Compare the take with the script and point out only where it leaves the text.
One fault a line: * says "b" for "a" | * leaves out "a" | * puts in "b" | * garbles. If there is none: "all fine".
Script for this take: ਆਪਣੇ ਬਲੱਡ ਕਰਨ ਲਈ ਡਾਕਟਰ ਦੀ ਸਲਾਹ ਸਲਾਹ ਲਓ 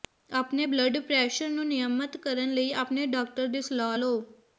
* puts in "ਪ੍ਰੈਸ਼ਰ ਨੂੰ ਨਿਯਮਤ"
* puts in "ਆਪਣੇ"
* leaves out "ਸਲਾਹ"